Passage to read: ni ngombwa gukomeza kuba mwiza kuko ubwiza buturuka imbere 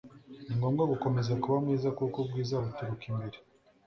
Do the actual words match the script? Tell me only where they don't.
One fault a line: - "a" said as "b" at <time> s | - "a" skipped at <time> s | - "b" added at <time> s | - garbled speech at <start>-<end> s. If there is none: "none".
none